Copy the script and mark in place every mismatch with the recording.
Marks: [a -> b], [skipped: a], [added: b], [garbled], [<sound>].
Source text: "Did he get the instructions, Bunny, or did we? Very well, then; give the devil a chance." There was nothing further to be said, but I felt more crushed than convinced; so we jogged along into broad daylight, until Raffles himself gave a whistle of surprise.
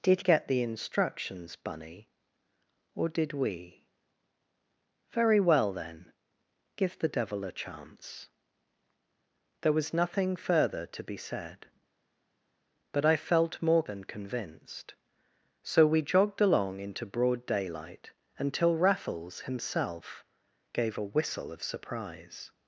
"Did [skipped: he] get the instructions, Bunny, or did we? Very well, then; give the devil a chance." There was nothing further to be said, but I felt more [skipped: crushed] than convinced; so we jogged along into broad daylight, until Raffles himself gave a whistle of surprise.